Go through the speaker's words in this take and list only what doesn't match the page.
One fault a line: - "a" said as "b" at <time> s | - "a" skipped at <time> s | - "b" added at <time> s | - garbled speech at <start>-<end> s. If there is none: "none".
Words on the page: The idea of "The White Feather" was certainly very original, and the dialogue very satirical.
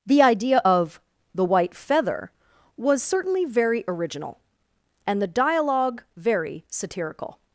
none